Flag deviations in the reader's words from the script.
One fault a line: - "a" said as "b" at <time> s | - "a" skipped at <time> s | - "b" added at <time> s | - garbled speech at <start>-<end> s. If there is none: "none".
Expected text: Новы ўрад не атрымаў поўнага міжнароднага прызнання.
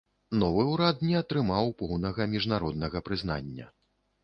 none